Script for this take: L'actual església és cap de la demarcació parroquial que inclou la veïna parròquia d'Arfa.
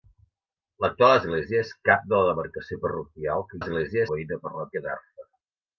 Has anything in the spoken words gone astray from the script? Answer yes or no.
yes